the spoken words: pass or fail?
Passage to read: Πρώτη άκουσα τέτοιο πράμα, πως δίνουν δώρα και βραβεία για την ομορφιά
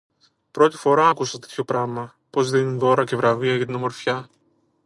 fail